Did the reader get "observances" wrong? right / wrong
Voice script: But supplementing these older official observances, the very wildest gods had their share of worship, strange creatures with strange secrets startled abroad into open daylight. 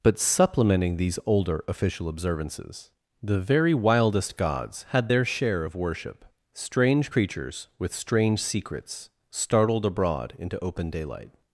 right